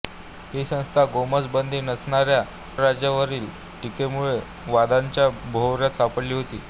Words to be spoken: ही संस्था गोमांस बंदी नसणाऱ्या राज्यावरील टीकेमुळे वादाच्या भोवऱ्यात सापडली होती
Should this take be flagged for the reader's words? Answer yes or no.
no